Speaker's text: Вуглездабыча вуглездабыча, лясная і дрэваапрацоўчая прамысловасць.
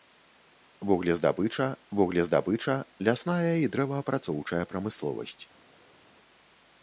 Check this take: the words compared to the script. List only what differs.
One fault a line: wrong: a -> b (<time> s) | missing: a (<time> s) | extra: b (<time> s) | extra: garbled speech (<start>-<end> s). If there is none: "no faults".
no faults